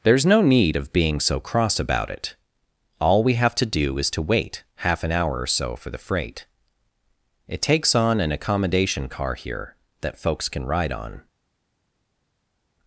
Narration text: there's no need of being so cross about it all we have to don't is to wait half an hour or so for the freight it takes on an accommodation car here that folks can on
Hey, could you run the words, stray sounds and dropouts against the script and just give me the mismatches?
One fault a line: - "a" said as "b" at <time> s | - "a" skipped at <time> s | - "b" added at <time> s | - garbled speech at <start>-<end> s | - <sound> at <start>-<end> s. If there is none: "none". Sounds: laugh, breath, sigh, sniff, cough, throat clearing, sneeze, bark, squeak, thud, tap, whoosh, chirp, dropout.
- "don't" said as "do" at 3.7 s
- "ride" added at 10.7 s